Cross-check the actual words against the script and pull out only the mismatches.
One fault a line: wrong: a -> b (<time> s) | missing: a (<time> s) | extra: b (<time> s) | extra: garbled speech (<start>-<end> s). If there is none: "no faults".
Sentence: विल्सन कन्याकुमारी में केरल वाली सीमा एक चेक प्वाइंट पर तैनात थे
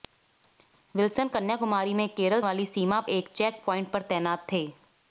no faults